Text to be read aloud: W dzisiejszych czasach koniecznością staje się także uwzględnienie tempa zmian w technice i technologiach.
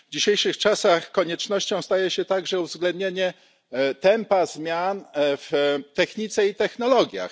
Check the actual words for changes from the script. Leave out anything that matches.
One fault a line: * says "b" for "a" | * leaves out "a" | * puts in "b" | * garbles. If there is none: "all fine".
all fine